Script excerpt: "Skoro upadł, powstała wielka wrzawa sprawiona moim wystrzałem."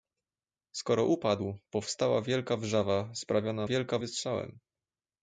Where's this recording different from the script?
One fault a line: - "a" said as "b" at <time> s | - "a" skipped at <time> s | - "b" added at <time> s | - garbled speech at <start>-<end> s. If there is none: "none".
- "moim" said as "wielka" at 3.6 s